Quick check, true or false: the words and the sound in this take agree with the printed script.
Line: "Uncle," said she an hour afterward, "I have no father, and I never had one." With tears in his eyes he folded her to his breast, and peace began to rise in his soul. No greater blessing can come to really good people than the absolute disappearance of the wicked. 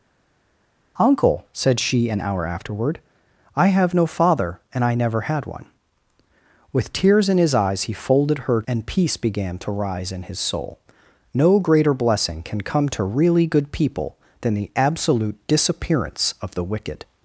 false